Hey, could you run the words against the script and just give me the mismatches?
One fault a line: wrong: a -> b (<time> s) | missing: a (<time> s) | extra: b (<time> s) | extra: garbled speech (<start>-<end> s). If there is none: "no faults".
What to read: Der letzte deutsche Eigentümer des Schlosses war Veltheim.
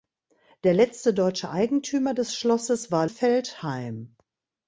no faults